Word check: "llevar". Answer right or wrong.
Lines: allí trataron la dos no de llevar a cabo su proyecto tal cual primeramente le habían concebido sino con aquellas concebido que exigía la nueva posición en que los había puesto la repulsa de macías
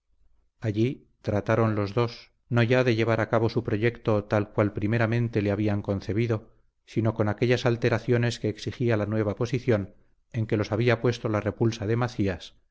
right